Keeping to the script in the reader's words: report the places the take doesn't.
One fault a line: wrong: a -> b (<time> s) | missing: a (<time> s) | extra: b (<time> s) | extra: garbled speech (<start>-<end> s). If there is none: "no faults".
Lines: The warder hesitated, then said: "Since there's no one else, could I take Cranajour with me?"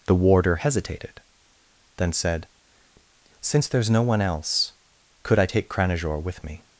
no faults